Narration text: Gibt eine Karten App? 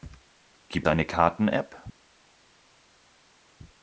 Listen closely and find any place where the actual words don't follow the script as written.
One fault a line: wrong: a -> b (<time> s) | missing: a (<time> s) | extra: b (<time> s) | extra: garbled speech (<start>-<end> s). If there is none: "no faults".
no faults